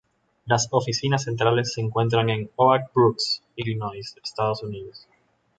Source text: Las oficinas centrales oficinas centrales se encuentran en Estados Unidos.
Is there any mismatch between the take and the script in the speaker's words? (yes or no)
yes